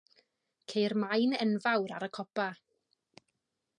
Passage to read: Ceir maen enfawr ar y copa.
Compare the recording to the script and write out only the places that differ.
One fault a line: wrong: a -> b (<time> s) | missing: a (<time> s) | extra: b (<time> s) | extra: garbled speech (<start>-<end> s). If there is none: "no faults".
no faults